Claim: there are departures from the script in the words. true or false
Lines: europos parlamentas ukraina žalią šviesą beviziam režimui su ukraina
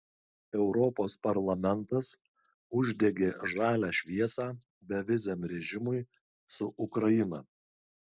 true